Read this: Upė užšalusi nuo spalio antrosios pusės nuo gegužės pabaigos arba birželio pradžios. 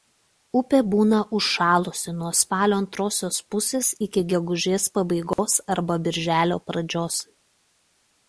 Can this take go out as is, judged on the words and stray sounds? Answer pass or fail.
fail